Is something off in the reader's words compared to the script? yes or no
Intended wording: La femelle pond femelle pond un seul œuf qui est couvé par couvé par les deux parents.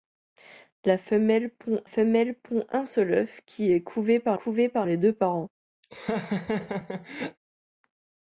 no